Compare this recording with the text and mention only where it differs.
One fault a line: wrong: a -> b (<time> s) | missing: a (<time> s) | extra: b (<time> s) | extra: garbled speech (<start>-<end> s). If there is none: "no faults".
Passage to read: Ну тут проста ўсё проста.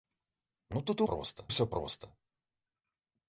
no faults